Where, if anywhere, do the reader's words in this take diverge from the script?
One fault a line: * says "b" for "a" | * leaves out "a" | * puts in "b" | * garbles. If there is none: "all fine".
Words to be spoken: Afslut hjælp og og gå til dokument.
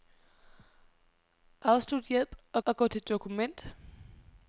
all fine